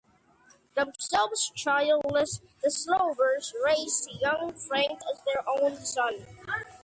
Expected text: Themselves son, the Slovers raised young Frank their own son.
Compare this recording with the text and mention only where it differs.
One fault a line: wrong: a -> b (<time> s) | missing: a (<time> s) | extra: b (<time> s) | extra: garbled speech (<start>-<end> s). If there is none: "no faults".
wrong: son -> childless (1.5 s)
extra: as (5.1 s)